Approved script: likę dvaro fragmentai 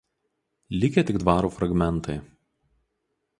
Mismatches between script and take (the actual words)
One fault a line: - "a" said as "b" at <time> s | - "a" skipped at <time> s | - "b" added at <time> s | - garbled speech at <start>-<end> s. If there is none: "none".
- "tik" added at 1.0 s